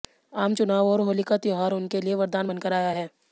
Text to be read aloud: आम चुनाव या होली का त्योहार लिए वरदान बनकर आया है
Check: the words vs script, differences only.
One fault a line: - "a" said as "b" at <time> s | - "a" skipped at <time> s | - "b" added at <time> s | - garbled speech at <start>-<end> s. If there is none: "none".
- "या" said as "और" at 0.9 s
- "उनके" added at 1.7 s